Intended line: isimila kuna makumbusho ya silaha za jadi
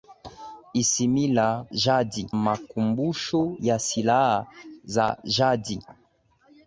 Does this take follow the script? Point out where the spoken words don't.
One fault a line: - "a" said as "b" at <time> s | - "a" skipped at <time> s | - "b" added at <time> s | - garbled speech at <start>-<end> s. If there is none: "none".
- "kuna" said as "jadi" at 1.7 s